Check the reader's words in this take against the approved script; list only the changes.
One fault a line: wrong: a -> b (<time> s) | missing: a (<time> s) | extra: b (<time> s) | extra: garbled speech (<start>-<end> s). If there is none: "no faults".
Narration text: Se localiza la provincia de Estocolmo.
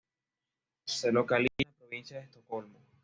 no faults